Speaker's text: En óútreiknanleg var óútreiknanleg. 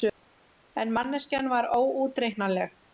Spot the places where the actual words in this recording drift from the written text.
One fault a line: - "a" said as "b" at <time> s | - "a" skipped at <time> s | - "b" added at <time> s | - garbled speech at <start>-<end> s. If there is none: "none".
- "óútreiknanleg" said as "manneskjan" at 1.0 s